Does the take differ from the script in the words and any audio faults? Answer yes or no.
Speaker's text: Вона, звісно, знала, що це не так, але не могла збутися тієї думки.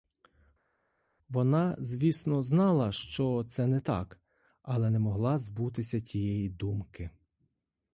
no